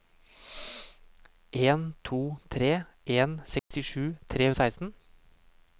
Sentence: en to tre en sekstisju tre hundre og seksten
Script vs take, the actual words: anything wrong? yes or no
yes